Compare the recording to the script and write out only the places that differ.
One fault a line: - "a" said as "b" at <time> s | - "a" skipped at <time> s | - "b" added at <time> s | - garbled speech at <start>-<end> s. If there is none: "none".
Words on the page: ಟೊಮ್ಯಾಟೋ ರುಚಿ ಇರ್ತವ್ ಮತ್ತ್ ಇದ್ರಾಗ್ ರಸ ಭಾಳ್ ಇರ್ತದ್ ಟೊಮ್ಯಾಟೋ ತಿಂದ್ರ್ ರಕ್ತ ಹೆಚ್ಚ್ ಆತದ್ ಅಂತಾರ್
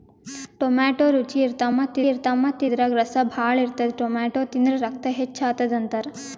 - "ಇರ್ತವ್ ಮತ್ತ್" added at 2.1 s